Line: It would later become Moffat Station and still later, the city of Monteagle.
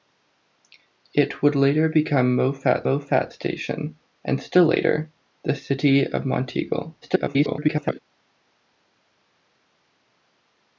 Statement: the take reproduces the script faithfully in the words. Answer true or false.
false